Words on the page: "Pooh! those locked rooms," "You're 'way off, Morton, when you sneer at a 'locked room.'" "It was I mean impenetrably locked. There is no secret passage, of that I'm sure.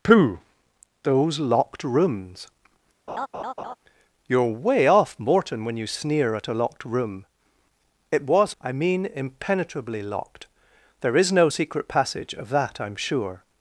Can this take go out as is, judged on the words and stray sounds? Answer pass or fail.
fail